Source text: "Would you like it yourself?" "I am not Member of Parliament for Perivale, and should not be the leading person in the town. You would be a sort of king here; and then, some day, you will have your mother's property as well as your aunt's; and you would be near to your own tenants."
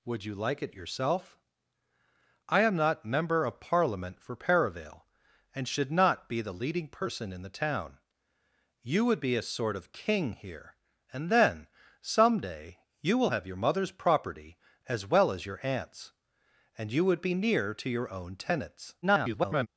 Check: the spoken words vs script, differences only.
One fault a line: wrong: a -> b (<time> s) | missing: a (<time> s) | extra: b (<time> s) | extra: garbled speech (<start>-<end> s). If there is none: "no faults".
extra: garbled speech (19.0-19.7 s)